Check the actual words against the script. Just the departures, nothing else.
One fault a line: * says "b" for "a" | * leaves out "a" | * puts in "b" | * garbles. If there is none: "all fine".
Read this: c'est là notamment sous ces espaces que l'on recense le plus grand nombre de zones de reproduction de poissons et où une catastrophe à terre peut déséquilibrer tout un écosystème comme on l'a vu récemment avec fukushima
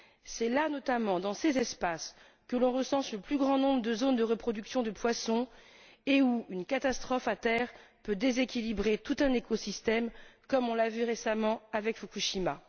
* says "dans" for "sous"